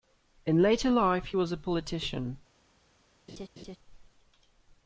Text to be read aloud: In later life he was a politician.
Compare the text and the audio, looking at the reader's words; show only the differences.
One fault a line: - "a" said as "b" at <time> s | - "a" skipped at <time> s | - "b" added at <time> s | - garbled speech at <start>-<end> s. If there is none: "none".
none